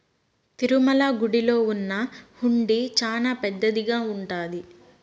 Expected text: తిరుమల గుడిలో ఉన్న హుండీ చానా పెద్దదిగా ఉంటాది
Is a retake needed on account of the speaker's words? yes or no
no